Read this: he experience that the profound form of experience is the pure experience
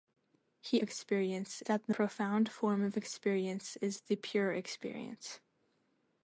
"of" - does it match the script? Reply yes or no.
yes